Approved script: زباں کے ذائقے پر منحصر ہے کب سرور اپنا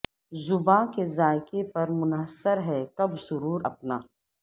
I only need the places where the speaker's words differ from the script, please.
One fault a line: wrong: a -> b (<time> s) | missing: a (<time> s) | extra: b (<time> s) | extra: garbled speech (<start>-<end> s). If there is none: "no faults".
no faults